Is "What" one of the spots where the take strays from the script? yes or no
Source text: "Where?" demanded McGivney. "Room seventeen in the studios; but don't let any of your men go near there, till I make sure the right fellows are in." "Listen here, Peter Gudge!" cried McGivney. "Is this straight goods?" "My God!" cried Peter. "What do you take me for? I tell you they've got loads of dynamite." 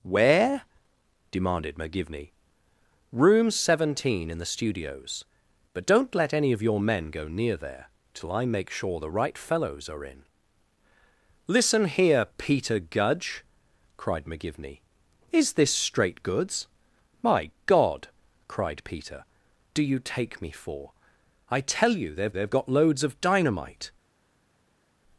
yes